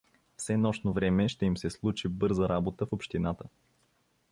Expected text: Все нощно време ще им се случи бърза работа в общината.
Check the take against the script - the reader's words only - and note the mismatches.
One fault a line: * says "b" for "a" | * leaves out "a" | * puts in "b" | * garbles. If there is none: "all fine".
all fine